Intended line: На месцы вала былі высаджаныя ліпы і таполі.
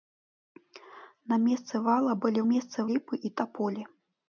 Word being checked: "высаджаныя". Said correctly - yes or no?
no